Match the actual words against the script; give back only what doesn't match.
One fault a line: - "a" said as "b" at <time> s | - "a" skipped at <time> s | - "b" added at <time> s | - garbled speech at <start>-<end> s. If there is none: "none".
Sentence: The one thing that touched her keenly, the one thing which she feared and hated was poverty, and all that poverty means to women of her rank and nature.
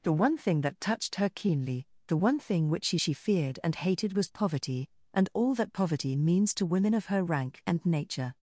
- "she" added at 3.0 s